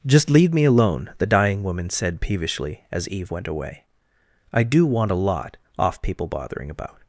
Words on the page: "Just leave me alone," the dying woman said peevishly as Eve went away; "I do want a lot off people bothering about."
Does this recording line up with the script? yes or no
yes